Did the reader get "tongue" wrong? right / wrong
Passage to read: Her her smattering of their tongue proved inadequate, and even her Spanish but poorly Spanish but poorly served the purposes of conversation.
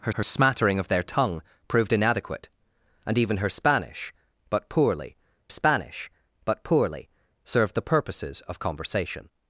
right